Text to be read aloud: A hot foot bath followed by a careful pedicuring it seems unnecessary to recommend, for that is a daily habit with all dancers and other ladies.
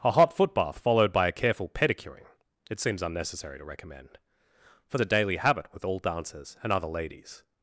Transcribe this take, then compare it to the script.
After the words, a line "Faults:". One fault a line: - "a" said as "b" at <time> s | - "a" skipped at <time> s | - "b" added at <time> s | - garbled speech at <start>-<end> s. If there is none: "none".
A hot foot bath followed by a careful pedicuring it seems unnecessary to recommend, for a daily habit with all dancers and other ladies.
Faults:
- "that is" skipped at 5.0 s